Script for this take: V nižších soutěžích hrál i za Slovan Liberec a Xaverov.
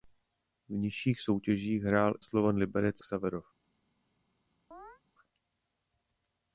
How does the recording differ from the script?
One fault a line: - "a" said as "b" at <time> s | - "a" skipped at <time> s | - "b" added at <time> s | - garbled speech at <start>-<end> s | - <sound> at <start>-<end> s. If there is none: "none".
- "i za" skipped at 2.1 s
- "a" skipped at 3.0 s
- chirp at 4.7-5.0 s